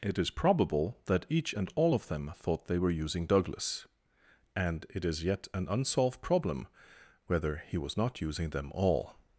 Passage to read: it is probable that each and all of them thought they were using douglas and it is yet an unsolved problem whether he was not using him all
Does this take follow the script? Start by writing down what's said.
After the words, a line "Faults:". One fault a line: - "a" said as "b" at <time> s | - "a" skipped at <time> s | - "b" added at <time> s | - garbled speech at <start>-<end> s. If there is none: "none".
it is probable that each and all of them thought they were using douglas and it is yet an unsolved problem whether he was not using them all
Faults:
- "him" said as "them" at 8.5 s